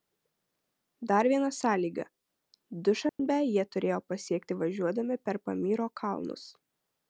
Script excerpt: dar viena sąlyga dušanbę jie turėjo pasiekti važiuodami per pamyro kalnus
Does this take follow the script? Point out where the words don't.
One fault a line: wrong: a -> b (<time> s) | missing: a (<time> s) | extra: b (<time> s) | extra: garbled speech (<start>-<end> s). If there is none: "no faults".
no faults